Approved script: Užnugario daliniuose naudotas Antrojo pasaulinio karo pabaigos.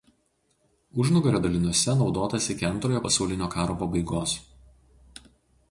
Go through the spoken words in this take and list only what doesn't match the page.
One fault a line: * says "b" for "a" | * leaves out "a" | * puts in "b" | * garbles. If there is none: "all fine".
* puts in "iki"